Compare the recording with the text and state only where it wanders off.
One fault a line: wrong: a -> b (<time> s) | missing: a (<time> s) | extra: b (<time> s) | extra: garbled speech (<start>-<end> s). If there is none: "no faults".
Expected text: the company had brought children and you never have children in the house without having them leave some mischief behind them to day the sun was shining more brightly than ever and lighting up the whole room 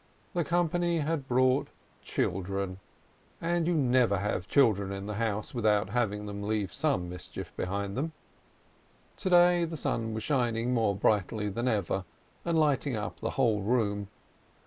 no faults